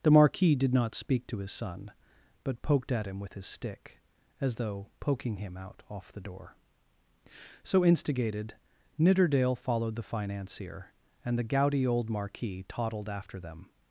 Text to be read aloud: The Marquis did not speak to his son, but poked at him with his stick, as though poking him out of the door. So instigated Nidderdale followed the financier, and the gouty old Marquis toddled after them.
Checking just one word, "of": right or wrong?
wrong